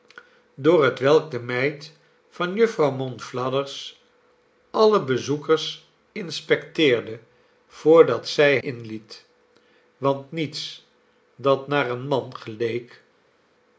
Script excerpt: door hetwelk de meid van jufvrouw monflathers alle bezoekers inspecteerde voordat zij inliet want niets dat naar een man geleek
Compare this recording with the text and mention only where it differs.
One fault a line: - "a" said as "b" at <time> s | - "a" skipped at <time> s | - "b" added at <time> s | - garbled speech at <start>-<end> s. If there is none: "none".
none